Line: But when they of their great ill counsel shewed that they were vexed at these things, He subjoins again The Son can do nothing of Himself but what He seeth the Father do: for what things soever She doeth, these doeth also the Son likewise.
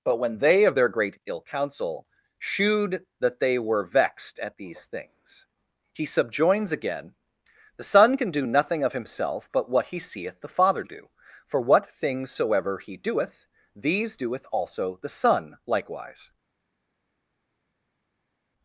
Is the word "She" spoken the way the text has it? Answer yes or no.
no